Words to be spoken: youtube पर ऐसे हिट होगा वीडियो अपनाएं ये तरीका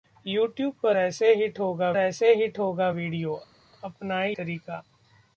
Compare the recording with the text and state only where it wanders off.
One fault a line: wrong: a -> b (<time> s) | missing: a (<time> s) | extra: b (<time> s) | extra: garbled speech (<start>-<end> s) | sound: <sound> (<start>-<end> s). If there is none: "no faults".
extra: ऐसे हिट होगा (2.0 s)
missing: ये (4.3 s)